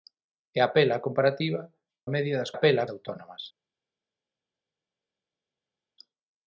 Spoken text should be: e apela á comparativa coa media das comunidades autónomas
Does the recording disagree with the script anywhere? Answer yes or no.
yes